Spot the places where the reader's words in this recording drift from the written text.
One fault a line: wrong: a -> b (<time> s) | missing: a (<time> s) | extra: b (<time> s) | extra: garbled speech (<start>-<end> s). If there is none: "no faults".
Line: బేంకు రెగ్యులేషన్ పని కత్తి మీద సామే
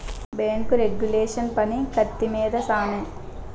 no faults